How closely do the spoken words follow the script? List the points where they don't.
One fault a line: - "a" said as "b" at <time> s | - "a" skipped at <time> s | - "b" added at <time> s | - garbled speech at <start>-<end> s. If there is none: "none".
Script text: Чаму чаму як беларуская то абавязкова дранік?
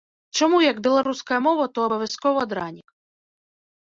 - "чаму" skipped at 0.6 s
- "мова" added at 1.5 s